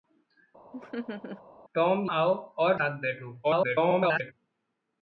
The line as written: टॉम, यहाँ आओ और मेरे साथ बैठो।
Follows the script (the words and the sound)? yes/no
no